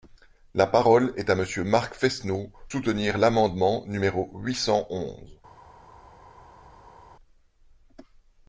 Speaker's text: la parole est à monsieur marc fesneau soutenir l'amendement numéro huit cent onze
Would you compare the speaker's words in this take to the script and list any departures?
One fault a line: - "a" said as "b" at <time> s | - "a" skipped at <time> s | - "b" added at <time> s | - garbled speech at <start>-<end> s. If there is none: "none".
none